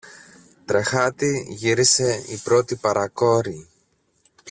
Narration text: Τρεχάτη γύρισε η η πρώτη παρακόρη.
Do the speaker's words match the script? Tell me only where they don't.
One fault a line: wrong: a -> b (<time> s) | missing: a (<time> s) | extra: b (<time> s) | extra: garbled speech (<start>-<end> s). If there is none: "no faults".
missing: η (2.4 s)